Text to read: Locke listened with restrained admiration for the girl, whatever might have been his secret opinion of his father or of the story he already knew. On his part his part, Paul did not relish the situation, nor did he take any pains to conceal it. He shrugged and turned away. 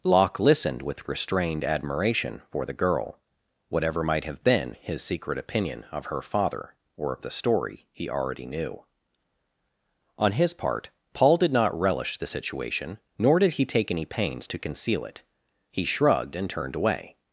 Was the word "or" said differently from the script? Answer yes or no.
no